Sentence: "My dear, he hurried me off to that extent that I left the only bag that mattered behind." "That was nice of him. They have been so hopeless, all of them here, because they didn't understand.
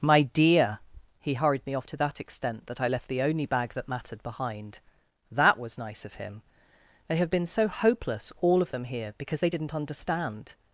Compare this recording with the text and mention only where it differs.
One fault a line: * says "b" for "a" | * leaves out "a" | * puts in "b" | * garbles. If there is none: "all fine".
all fine